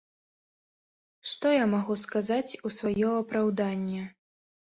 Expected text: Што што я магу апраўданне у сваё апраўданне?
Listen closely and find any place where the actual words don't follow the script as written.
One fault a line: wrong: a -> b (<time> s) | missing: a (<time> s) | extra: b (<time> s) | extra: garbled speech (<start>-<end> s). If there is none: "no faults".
missing: што (1.5 s)
wrong: апраўданне -> сказаць (2.0 s)